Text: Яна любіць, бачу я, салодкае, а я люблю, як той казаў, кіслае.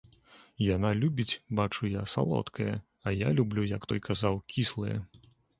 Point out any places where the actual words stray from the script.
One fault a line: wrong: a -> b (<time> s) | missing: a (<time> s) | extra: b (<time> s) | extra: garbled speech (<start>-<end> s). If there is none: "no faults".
no faults